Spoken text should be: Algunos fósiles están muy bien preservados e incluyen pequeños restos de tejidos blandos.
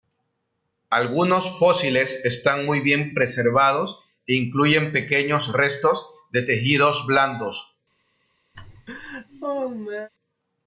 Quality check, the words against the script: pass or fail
pass